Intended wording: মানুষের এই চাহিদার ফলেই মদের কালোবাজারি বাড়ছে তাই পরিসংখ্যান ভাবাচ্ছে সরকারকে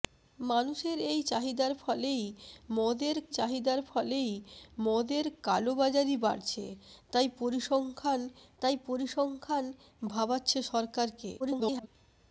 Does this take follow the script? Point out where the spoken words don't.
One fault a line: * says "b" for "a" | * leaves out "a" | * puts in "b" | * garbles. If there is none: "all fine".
* puts in "চাহিদার ফলেই মদের"
* puts in "তাই পরিসংখ্যান"
* garbles